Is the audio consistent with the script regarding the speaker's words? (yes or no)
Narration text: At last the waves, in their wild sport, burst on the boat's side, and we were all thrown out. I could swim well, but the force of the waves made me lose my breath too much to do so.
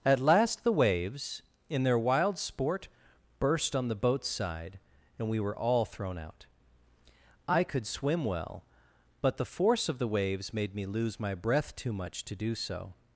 yes